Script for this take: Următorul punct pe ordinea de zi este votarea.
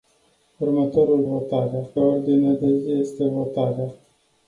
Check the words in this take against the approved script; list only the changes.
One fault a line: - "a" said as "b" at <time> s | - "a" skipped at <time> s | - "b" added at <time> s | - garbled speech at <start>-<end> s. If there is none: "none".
- "punct" said as "votarea" at 1.2 s